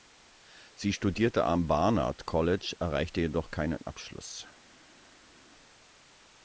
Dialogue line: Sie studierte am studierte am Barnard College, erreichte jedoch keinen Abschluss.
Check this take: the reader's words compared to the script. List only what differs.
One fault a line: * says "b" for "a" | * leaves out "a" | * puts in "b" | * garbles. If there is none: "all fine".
* leaves out "studierte am"